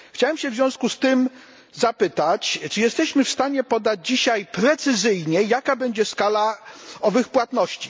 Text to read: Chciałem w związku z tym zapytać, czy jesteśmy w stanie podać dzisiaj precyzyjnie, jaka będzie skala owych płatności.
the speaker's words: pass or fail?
pass